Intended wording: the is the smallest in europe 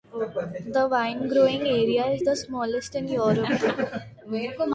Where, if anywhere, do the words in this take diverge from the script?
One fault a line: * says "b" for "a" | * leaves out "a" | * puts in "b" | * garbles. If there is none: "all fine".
* puts in "wine growing area"